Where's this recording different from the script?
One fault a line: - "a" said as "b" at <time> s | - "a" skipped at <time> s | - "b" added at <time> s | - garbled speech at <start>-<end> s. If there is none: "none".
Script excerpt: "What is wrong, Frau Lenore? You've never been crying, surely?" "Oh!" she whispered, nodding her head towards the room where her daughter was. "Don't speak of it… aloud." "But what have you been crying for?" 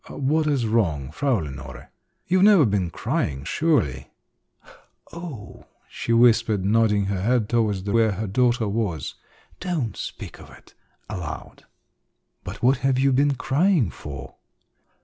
- "room" skipped at 8.0 s